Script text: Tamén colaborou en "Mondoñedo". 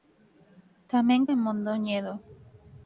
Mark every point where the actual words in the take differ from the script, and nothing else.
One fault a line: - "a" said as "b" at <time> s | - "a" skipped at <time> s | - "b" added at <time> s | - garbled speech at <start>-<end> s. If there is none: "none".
- "colaborou" skipped at 1.2 s